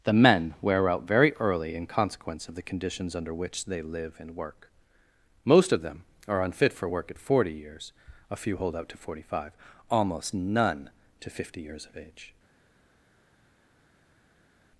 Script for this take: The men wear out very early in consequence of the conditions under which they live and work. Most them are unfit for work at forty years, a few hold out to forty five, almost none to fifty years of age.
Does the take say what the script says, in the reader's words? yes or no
no